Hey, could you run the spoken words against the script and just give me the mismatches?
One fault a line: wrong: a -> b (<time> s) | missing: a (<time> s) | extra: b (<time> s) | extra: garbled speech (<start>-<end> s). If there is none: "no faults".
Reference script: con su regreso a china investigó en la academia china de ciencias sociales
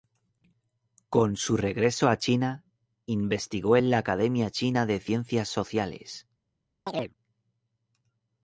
no faults